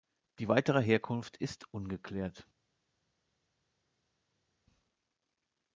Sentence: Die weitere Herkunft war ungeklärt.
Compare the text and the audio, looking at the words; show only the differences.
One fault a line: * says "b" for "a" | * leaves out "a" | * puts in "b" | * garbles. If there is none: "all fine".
* says "ist" for "war"